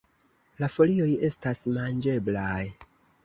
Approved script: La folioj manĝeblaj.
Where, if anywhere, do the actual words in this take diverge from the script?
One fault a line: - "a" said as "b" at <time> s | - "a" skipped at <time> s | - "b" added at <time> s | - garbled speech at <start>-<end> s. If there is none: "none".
- "estas" added at 1.3 s